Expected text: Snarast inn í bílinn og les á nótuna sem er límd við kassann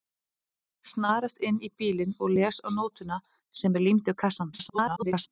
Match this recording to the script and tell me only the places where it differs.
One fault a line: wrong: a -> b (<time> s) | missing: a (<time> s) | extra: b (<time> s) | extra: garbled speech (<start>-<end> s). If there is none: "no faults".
extra: garbled speech (4.5-5.3 s)